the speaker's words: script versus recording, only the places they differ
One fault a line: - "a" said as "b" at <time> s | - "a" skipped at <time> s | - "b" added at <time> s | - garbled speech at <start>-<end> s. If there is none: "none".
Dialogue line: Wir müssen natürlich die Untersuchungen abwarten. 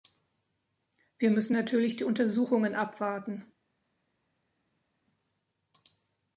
none